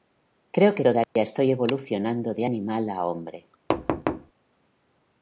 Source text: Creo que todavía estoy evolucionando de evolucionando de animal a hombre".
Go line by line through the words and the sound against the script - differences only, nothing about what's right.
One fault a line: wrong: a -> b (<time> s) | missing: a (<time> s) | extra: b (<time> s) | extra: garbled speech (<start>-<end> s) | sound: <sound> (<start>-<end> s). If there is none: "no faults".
sound: dropout (1.0-1.2 s)
missing: evolucionando de (2.4 s)
sound: thud (3.7-4.3 s)